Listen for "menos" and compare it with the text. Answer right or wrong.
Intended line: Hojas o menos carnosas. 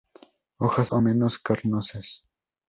right